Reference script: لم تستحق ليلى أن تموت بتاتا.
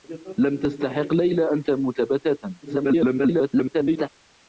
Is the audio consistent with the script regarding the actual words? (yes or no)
no